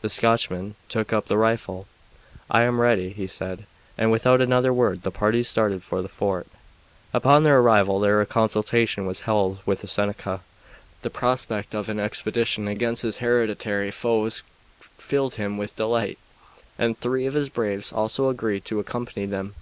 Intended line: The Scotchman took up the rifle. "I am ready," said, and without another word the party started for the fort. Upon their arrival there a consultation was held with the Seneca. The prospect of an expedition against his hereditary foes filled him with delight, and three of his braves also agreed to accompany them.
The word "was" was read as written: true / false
true